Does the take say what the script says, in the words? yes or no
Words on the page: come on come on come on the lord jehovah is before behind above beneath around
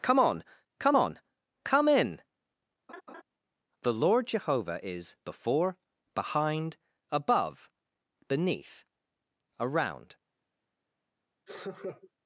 no